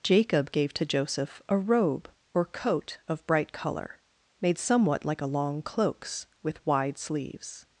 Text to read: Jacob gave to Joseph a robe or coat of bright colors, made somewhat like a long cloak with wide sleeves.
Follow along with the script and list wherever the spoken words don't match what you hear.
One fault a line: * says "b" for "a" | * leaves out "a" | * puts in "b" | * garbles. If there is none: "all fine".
* says "color" for "colors"
* says "cloaks" for "cloak"